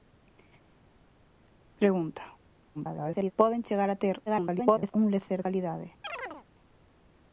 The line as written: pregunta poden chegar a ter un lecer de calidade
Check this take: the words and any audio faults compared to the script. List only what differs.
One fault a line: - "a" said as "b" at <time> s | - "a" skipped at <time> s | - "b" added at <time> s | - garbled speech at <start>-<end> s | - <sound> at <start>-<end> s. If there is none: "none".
- garbled speech at 2.7-3.3 s
- garbled speech at 4.3-4.9 s
- "de" skipped at 5.4 s
- chirp at 6.0-6.5 s